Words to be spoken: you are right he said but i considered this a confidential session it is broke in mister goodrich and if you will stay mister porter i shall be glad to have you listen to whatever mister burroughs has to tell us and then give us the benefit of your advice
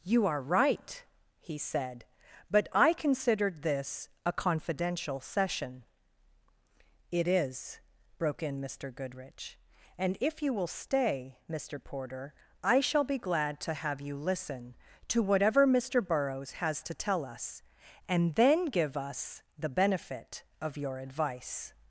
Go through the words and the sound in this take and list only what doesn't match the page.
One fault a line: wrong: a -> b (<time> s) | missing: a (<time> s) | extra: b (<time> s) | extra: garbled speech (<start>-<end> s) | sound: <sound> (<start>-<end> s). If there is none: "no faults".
no faults